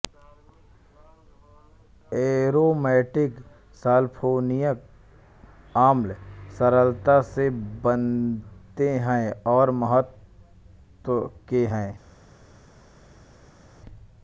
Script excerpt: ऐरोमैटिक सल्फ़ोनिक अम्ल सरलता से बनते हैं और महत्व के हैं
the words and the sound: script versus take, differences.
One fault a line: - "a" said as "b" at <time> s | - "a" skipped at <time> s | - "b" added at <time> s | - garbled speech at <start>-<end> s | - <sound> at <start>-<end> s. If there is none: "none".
none